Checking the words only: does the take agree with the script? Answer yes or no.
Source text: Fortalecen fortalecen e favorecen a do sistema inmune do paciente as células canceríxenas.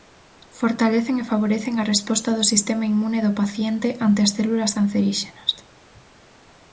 no